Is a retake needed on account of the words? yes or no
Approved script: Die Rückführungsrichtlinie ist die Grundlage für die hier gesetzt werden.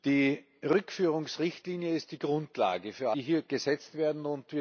no